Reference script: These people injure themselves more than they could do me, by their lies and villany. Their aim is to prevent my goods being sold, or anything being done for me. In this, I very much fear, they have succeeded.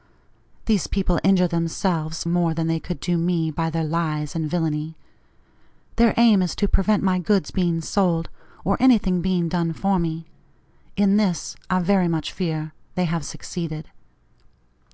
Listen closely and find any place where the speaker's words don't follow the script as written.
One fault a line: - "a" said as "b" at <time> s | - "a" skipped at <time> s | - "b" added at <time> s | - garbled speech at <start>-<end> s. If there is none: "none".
none